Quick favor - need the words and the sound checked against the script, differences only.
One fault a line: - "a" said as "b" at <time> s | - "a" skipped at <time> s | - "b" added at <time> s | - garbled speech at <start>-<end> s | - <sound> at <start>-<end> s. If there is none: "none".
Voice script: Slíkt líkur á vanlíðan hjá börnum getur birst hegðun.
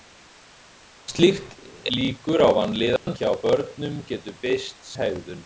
- dropout at 3.0-3.1 s